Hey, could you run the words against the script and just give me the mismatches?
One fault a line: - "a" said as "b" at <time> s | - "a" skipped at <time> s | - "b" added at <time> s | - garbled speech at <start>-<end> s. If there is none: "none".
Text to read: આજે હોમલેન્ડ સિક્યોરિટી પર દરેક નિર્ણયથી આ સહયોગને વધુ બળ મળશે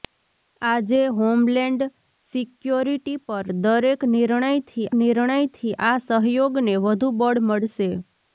- "નિર્ણયથી" added at 5.0 s